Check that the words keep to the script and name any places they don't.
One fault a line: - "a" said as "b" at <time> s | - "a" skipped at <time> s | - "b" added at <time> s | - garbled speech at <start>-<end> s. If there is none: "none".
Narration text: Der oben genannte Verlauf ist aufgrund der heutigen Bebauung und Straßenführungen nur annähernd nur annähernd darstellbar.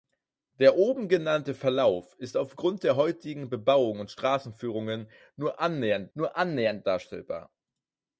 none